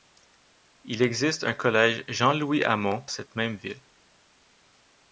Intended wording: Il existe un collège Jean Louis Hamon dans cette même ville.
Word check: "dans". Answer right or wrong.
wrong